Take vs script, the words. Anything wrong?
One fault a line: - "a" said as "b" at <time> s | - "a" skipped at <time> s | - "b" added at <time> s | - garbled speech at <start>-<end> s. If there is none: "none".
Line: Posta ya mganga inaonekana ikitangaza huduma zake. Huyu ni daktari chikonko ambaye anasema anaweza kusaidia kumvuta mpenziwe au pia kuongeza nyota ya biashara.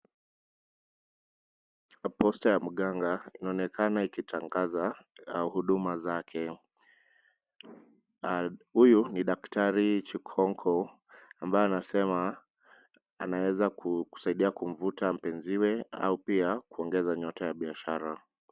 none